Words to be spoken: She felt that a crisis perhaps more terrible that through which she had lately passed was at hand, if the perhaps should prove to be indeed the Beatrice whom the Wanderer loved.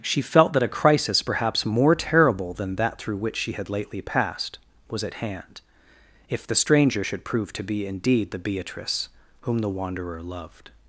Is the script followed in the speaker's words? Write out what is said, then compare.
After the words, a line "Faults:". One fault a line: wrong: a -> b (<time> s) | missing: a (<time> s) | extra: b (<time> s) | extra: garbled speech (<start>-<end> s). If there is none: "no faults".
She felt that a crisis perhaps more terrible than that through which she had lately passed was at hand, if the stranger should prove to be indeed the Beatrice whom the Wanderer loved.
Faults:
extra: than (2.5 s)
wrong: perhaps -> stranger (6.5 s)